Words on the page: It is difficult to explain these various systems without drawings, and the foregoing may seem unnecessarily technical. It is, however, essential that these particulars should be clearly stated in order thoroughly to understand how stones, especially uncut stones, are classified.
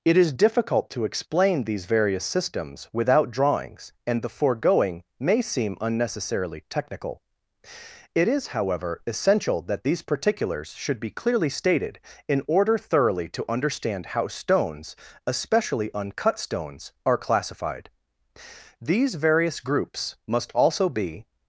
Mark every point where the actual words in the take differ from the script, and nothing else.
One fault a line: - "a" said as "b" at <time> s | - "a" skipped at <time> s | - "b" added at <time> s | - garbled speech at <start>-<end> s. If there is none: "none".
- "These various groups must also be" added at 18.8 s